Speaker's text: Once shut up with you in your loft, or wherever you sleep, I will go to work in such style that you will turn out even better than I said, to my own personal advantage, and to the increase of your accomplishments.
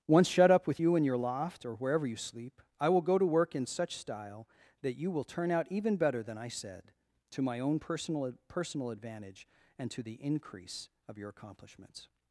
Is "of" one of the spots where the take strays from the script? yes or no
no